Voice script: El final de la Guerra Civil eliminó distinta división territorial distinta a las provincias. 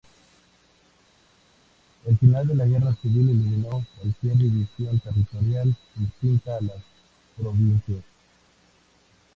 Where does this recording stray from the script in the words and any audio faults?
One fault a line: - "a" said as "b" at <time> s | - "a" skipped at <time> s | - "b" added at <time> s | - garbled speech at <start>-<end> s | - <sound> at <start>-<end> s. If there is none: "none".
- "distinta" said as "cualquier" at 4.0 s